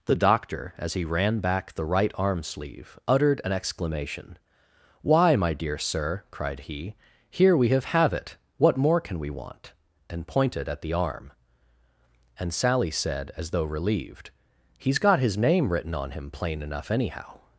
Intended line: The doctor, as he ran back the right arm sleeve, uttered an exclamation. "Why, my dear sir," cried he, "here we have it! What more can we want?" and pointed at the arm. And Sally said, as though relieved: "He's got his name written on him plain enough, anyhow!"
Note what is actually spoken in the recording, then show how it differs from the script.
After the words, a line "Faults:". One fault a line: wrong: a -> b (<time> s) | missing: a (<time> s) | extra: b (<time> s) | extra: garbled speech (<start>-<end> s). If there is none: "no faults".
The doctor, as he ran back the right arm sleeve, uttered an exclamation. "Why, my dear sir," cried he, "here we have have it! What more can we want?" and pointed at the arm. And Sally said, as though relieved: "He's got his name written on him plain enough, anyhow!"
Faults:
extra: have (7.9 s)